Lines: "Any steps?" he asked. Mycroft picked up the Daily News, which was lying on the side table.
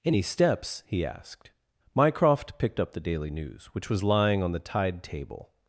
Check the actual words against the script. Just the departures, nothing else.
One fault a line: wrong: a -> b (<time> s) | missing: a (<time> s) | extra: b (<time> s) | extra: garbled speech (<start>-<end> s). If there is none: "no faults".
wrong: side -> tide (4.6 s)